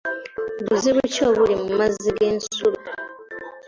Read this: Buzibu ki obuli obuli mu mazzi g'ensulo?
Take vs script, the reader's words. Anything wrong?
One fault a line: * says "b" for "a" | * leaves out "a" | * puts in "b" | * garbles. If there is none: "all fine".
* leaves out "obuli"